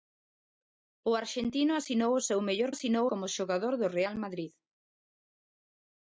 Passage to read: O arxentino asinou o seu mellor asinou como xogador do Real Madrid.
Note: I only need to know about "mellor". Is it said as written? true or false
true